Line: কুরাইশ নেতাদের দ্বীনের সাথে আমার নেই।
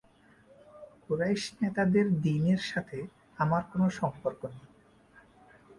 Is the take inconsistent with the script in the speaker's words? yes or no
yes